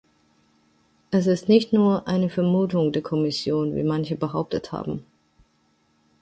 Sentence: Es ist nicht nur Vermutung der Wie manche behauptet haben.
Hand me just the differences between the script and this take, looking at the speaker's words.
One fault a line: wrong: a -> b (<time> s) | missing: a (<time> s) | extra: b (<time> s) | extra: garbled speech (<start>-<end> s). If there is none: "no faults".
extra: eine (2.1 s)
extra: Kommission (3.0 s)